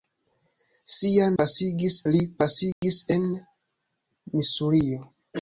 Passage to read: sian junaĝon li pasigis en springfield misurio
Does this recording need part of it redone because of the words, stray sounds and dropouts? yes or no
yes